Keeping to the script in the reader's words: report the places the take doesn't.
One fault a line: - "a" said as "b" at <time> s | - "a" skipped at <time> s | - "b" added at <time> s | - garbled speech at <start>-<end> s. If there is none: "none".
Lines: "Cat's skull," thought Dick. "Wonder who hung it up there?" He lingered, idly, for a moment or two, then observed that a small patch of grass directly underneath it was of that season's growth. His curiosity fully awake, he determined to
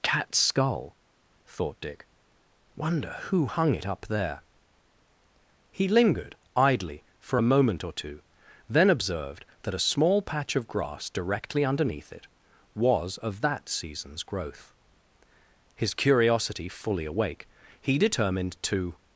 none